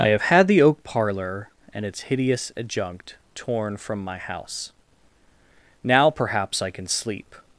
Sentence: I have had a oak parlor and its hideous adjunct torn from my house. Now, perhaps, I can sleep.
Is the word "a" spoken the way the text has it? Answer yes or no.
no